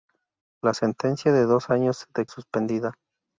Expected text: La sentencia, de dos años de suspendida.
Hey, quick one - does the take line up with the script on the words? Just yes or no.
yes